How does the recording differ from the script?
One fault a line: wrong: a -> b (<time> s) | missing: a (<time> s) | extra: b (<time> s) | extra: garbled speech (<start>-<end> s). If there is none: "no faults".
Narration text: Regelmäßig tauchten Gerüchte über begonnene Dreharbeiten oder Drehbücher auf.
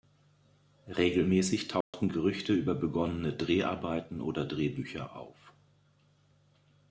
no faults